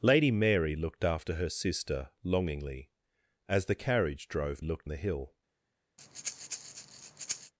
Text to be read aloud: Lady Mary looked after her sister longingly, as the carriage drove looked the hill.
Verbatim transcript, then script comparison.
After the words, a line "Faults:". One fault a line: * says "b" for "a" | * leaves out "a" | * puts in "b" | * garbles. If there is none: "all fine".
Lady Mary looked after her sister longingly, as the carriage drove looked the hill.
Faults:
all fine